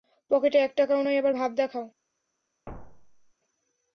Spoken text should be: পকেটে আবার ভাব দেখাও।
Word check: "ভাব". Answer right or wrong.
right